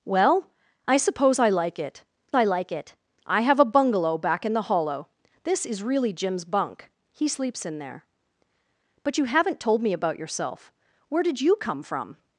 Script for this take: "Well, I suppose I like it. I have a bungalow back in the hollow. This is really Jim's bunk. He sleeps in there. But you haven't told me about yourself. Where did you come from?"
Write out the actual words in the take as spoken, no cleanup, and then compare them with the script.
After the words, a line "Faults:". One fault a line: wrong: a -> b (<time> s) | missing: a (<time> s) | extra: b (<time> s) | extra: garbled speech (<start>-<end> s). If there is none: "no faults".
"Well, I suppose I like it I like it. I have a bungalow back in the hollow. This is really Jim's bunk. He sleeps in there. But you haven't told me about yourself. Where did you come from?"
Faults:
extra: like it I (2.4 s)